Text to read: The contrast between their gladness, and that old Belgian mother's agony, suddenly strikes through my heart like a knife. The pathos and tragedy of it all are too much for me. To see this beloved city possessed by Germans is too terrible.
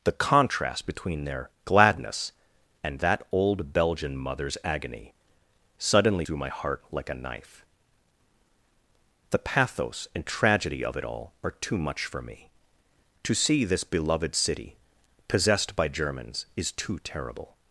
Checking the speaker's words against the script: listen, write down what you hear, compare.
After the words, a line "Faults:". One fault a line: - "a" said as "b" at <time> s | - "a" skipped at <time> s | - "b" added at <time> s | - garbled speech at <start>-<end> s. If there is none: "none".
The contrast between their gladness, and that old Belgian mother's agony, suddenly through my heart like a knife. The pathos and tragedy of it all are too much for me. To see this beloved city possessed by Germans is too terrible.
Faults:
- "strikes" skipped at 6.2 s